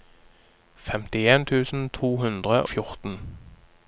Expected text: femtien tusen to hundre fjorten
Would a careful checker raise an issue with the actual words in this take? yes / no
no